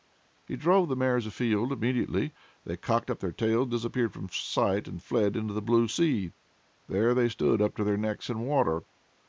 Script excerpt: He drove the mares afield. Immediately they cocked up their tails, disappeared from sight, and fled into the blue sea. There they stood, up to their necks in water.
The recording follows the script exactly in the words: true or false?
true